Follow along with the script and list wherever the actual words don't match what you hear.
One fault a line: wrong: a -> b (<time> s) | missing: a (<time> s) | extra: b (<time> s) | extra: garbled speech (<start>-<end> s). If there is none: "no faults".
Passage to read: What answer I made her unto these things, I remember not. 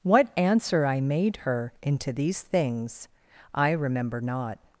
wrong: unto -> into (1.8 s)